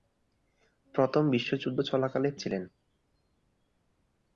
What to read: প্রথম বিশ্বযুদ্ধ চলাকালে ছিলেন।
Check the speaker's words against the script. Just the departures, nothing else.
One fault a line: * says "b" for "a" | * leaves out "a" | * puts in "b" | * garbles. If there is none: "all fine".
all fine